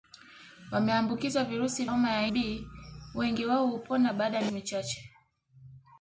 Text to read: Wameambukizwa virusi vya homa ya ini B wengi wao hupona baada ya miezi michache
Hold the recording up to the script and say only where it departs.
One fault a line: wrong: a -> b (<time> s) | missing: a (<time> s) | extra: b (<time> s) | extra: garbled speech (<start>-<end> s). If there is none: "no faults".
missing: vya (1.9 s)
missing: ini (2.3 s)
missing: miezi (4.5 s)